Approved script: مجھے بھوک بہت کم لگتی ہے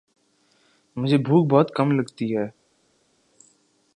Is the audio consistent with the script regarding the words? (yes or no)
yes